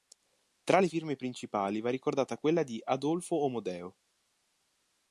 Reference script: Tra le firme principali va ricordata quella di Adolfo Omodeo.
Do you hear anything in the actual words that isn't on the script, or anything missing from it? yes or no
no